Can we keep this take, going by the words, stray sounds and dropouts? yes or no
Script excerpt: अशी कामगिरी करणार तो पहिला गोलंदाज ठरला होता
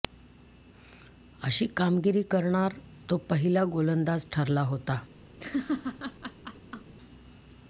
no